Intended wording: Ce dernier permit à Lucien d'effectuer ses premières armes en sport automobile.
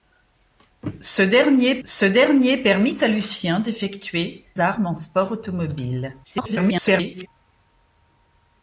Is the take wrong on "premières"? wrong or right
wrong